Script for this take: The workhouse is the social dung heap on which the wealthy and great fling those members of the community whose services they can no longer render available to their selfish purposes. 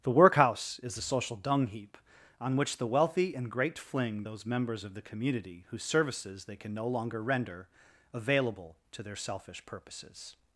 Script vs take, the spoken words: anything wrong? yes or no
no